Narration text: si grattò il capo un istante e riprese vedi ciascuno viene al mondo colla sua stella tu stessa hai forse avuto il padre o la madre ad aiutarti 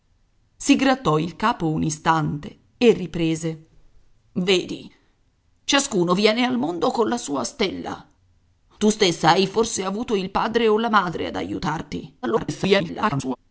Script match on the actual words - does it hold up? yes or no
no